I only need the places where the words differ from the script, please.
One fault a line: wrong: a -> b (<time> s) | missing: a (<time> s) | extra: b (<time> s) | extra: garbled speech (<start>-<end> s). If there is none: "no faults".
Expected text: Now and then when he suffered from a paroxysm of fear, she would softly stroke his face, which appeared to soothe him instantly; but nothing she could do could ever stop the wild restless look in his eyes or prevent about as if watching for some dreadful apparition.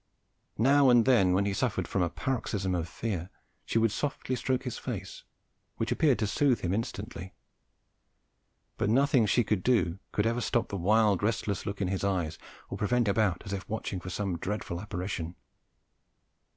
no faults